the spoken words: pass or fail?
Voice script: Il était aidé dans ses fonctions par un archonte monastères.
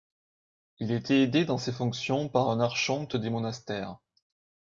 fail